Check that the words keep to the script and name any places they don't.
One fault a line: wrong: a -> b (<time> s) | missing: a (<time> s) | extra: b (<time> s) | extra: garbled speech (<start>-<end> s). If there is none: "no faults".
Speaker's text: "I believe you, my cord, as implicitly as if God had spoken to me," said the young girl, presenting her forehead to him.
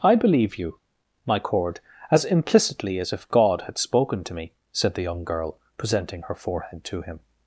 no faults